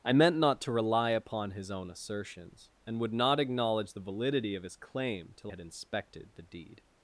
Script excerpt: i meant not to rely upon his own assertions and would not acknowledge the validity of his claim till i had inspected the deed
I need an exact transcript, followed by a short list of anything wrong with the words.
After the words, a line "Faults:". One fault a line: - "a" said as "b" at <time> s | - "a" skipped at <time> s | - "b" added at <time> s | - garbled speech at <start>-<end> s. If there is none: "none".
i meant not to rely upon his own assertions and would not acknowledge the validity of his claim till had inspected the deed
Faults:
- "i" skipped at 5.5 s